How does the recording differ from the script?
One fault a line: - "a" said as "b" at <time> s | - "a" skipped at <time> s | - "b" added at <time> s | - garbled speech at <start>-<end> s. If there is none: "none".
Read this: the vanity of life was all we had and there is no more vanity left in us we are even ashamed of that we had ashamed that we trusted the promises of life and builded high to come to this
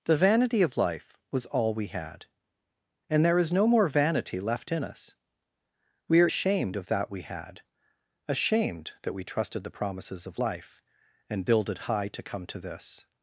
- "even" skipped at 6.3 s